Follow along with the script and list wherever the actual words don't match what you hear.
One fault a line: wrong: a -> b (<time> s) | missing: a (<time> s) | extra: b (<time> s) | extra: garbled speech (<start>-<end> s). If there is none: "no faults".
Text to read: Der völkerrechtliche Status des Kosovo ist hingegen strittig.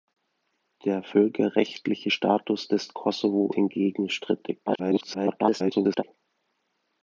missing: ist (3.5 s)
extra: garbled speech (4.7-6.0 s)